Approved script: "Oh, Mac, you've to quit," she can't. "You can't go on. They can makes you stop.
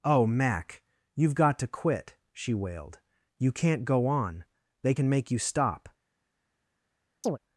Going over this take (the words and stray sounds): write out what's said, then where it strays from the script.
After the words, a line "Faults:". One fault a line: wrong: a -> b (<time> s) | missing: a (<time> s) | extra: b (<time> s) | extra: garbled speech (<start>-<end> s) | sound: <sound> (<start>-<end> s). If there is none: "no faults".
"Oh, Mac, you've got to quit," she wailed. "You can't go on. They can make you stop.
Faults:
extra: got (1.4 s)
wrong: can't -> wailed (2.5 s)
wrong: makes -> make (5.1 s)
sound: chirp (7.2-7.4 s)